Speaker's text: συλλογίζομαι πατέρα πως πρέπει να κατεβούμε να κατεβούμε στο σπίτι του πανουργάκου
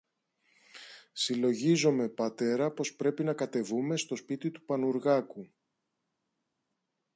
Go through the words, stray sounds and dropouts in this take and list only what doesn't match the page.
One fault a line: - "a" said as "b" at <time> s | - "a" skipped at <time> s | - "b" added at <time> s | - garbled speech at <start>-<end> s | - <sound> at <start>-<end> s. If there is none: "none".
- "να κατεβούμε" skipped at 4.0 s